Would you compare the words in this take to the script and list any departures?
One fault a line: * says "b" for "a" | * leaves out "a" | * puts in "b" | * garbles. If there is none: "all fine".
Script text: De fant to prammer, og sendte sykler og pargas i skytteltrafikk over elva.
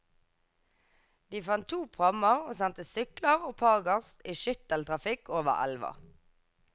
all fine